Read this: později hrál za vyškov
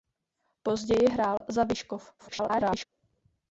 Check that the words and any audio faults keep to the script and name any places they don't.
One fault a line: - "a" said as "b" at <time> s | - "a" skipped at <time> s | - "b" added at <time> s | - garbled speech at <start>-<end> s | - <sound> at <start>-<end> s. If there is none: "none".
- dropout at 1.4-1.4 s
- garbled speech at 2.2-2.9 s